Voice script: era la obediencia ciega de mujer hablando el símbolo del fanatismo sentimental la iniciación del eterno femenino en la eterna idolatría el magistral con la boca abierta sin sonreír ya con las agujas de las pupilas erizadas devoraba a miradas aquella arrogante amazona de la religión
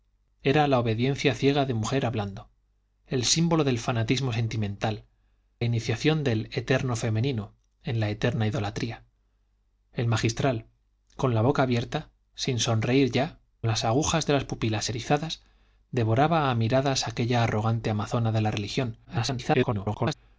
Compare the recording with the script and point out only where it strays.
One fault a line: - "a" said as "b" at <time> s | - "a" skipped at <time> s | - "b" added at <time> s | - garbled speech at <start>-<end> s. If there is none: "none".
- "la" skipped at 5.0 s
- "con" skipped at 13.4 s
- garbled speech at 19.0-20.1 s